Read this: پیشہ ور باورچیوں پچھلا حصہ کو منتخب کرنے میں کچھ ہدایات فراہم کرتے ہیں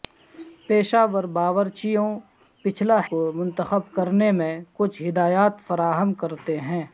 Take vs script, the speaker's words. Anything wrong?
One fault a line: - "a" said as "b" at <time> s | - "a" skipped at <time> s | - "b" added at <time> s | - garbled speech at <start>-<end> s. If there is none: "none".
- "حصہ" skipped at 3.0 s